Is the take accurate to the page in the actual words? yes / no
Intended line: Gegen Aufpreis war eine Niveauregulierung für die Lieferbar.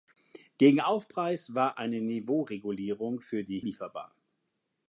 yes